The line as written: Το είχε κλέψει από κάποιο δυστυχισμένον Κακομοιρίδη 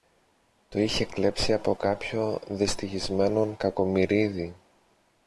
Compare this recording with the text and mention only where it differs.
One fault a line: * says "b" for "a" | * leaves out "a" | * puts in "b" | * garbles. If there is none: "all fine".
all fine